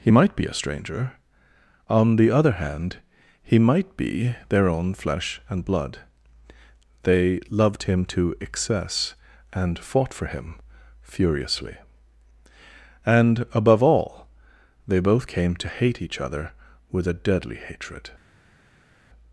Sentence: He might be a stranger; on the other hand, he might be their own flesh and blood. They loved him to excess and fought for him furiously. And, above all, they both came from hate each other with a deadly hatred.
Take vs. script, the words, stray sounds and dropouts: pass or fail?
fail